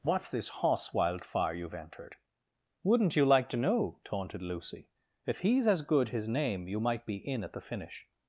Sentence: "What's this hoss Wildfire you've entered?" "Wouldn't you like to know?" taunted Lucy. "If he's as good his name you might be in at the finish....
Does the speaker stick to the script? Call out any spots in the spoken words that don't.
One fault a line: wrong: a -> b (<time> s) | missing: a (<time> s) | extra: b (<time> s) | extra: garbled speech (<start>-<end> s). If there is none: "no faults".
no faults